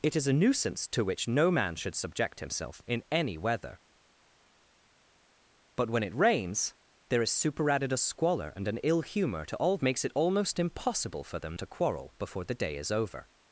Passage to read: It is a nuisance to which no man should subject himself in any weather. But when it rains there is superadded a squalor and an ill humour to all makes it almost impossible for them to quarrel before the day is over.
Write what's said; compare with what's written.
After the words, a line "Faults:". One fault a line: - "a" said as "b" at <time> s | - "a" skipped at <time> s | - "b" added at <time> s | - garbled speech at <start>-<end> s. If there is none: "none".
It is a nuisance to which no man should subject himself in any weather. But when it rains there is superadded a squalor and an ill humour to all makes it almost impossible for them to quarrel before the day is over.
Faults:
none